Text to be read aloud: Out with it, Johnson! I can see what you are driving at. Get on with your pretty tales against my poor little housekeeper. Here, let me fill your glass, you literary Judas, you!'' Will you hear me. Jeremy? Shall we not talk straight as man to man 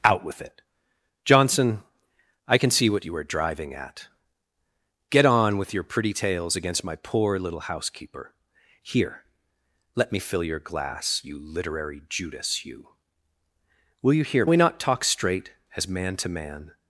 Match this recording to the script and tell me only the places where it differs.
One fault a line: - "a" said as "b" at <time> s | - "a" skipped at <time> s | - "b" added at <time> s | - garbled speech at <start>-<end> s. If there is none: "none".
- "me Jeremy Shall" skipped at 14.5 s